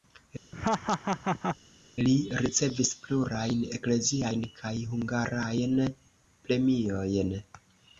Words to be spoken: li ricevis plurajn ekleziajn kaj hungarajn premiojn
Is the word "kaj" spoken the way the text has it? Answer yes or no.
yes